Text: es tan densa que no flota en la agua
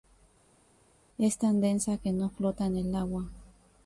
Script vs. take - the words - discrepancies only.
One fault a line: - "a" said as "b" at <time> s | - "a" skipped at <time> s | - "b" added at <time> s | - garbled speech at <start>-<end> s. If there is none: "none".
- "la" said as "el" at 2.8 s